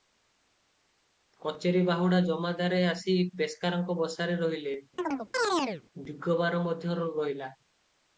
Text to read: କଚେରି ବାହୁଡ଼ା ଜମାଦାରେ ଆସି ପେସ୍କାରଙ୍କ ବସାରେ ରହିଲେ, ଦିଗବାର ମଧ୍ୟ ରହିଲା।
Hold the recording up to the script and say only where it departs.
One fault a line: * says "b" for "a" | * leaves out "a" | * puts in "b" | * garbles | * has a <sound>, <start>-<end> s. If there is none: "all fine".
* has a chirp, 5.0-5.8 s